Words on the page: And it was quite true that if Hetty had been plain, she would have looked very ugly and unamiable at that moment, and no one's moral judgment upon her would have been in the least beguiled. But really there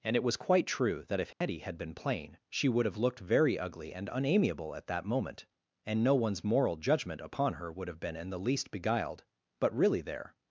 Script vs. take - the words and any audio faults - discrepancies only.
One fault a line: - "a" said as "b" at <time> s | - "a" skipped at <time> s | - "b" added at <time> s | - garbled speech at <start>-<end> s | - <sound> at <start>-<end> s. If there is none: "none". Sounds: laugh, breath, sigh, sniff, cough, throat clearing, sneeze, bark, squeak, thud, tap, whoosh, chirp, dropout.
- dropout at 1.3-1.4 s